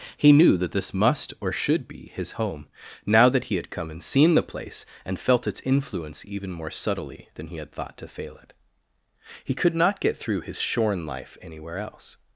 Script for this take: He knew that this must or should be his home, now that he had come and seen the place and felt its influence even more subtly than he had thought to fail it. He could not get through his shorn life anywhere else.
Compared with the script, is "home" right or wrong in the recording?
right